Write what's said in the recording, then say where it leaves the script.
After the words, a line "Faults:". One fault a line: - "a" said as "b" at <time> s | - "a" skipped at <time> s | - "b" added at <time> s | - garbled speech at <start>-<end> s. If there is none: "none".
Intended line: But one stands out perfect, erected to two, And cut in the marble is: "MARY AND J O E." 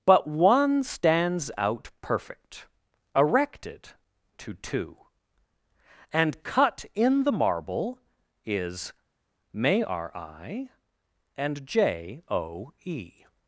But one stands out perfect, erected to two, And cut in the marble is: "May r I AND J O E."
Faults:
- "MARY" said as "May r I" at 9.5 s